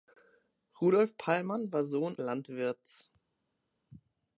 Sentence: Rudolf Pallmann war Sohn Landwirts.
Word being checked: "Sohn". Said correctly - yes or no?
yes